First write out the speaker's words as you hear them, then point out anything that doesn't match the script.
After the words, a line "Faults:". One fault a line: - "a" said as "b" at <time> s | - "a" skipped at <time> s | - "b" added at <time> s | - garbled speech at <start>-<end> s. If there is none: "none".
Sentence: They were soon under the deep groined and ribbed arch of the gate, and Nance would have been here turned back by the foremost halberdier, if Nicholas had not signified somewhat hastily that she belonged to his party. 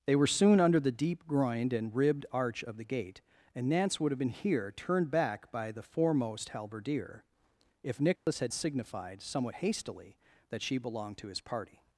They were soon under the deep groined and ribbed arch of the gate, and Nance would have been here turned back by the foremost halberdier, if Nicholas had signified somewhat hastily that she belonged to his party.
Faults:
- "not" skipped at 8.5 s